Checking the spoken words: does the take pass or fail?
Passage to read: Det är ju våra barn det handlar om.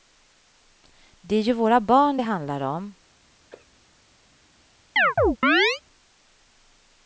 pass